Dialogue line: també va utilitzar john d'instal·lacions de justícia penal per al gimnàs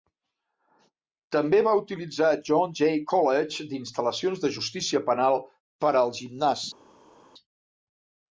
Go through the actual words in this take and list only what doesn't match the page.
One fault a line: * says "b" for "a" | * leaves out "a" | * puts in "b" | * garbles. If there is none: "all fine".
* puts in "jay college"